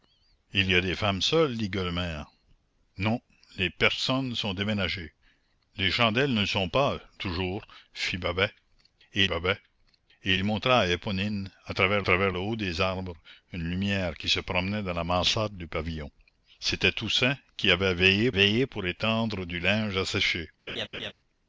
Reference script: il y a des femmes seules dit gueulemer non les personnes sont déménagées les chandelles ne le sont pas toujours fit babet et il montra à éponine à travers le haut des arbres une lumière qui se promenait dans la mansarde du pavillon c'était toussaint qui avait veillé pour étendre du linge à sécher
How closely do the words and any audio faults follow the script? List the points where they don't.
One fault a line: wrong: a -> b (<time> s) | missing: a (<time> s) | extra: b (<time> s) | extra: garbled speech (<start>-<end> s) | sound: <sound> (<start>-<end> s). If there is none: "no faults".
extra: babet et (9.2 s)
extra: travers (12.0 s)
extra: veillé (18.3 s)
sound: laugh (20.7-21.1 s)